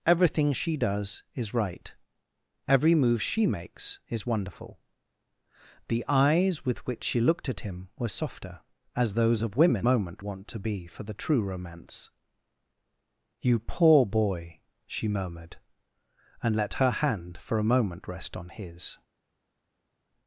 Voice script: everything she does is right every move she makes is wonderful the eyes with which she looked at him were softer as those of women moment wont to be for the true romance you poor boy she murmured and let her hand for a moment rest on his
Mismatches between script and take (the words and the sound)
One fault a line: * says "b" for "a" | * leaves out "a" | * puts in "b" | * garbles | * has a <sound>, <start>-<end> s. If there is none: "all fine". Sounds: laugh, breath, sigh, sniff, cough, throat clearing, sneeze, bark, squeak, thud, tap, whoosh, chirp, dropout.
all fine